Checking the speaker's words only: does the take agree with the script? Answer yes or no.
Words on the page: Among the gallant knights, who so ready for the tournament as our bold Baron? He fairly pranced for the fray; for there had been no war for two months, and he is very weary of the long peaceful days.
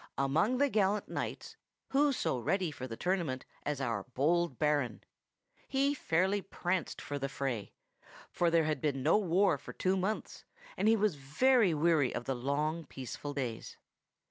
no